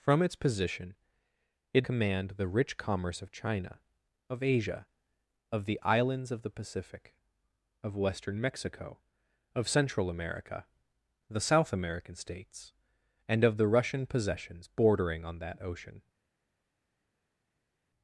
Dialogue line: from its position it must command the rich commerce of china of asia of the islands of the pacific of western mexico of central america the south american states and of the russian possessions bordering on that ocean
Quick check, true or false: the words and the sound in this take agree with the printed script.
false